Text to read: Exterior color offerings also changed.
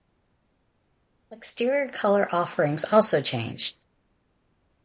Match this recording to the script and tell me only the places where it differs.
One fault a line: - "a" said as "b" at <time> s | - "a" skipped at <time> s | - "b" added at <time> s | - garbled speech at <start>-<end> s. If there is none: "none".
none